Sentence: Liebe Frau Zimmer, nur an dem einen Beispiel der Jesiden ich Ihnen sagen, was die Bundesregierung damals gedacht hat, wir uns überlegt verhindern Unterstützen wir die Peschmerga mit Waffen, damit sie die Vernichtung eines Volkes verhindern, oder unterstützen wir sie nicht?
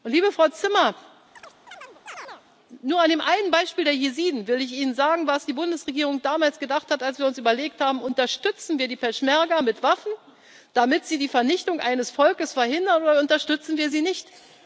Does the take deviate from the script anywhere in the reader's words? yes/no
yes